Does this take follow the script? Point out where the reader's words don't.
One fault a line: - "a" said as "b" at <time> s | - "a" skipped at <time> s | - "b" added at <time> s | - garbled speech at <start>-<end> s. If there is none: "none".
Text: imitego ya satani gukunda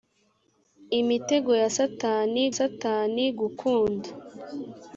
- "satani" added at 2.6 s